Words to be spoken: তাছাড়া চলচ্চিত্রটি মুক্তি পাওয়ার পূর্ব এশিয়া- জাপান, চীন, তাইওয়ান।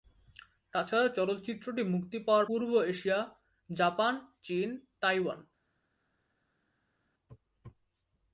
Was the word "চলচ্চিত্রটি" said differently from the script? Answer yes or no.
no